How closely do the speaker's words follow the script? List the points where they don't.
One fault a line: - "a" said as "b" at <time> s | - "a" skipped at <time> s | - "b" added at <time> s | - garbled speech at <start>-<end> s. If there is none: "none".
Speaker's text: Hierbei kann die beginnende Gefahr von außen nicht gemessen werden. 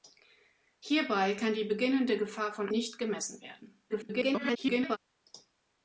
- "außen" skipped at 2.7 s
- garbled speech at 3.9-5.0 s